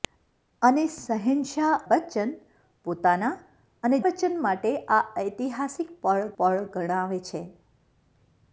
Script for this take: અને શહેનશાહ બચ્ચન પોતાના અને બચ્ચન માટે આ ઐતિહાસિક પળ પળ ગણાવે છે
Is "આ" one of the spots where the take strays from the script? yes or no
no